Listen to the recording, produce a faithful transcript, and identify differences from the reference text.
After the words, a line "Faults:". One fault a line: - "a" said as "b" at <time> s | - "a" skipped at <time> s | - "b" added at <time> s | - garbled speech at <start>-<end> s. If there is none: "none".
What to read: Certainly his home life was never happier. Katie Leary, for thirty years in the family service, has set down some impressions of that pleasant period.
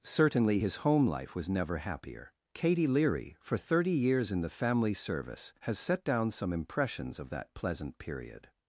Certainly his home life was never happier. Katie Leary, for thirty years in the family service, has set down some impressions of that pleasant period.
Faults:
none